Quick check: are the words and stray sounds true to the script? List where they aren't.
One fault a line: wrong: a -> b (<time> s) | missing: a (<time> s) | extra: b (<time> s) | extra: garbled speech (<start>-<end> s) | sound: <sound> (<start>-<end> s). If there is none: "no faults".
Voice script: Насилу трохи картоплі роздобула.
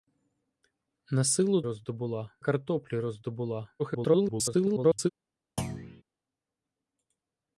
wrong: трохи -> роздобула (1.6 s)
extra: garbled speech (3.8-5.1 s)
sound: thud (5.6-6.0 s)